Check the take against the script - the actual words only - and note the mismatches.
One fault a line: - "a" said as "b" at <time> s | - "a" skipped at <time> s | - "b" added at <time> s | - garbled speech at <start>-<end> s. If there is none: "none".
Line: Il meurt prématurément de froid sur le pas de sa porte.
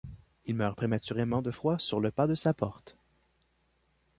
none